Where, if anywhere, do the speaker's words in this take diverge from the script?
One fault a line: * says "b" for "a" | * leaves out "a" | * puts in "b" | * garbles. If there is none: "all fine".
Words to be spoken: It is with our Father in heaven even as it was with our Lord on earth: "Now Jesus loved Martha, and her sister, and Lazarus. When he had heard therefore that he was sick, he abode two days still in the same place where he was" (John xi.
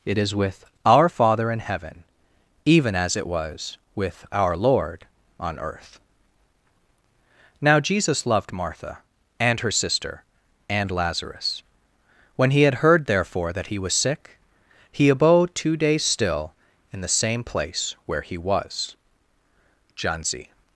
* says "z" for "xi"